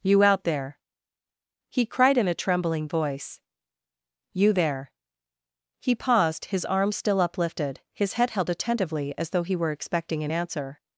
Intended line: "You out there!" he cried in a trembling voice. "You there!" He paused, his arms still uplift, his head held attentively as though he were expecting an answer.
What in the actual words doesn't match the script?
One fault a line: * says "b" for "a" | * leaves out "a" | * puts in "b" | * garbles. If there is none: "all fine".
* says "uplifted" for "uplift"